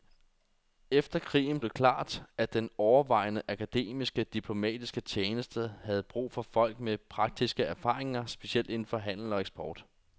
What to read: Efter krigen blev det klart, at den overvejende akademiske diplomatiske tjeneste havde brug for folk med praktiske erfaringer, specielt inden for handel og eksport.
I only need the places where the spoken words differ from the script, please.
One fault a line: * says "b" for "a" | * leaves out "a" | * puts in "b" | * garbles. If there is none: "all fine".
* leaves out "blev"